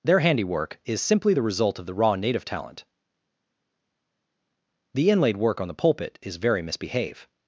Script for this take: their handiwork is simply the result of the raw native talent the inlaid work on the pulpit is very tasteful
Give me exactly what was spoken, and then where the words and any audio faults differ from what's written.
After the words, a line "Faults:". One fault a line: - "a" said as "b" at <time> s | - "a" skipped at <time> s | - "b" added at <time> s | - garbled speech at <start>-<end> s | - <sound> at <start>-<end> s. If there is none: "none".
their handiwork is simply the result of the raw native talent the inlaid work on the pulpit is very misbehave
Faults:
- "tasteful" said as "misbehave" at 6.6 s